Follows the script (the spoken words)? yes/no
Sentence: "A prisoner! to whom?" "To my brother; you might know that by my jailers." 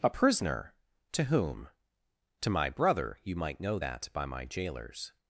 yes